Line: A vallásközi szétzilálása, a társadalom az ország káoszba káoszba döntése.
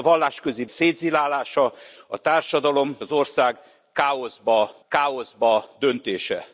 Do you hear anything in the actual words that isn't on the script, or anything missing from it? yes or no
no